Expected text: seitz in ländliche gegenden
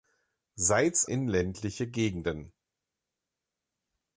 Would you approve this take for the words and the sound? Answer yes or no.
yes